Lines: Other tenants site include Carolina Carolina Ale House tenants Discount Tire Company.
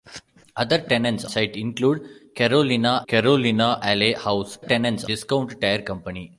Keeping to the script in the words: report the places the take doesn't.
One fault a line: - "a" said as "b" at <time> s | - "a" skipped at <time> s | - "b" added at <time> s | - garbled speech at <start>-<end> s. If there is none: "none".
none